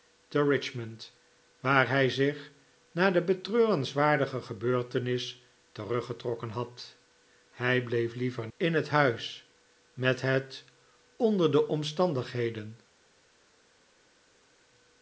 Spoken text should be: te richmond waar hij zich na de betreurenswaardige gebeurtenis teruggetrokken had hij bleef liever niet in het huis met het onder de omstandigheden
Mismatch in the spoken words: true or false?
true